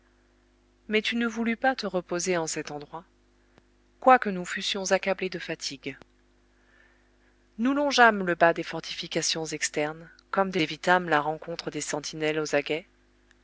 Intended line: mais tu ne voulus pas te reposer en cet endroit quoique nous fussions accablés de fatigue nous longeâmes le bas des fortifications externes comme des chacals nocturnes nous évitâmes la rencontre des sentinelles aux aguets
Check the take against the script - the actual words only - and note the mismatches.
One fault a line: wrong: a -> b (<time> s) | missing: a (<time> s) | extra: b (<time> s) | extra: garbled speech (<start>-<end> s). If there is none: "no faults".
missing: chacals nocturnes nous (10.6 s)